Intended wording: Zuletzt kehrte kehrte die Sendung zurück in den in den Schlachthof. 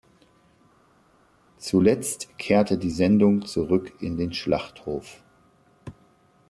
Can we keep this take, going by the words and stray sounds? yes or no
no